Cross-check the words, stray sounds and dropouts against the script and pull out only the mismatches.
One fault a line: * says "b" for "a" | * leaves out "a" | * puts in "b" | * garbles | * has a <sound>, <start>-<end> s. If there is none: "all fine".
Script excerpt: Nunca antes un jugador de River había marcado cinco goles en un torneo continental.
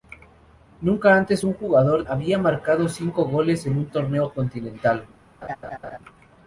* leaves out "de River"
* has a laugh, 5.4-6.0 s